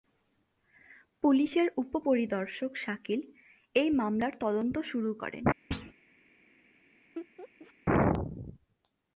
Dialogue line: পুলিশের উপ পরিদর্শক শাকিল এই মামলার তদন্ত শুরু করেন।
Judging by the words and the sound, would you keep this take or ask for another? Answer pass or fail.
fail